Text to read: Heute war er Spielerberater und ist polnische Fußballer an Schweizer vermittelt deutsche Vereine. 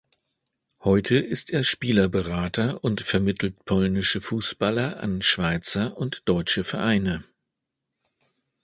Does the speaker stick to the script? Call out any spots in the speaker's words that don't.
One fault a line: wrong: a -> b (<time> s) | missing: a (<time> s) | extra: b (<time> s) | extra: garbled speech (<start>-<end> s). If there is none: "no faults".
wrong: war -> ist (1.2 s)
wrong: ist -> vermittelt (3.0 s)
wrong: vermittelt -> und (6.0 s)